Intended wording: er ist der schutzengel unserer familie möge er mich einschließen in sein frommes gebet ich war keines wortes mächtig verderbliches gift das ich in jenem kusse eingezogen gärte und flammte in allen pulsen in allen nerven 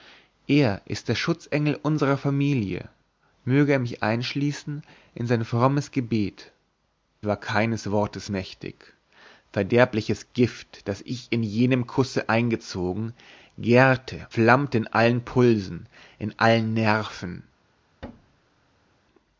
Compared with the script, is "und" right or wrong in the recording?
wrong